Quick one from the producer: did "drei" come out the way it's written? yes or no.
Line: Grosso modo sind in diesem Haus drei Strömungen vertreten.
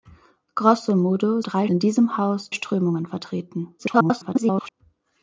no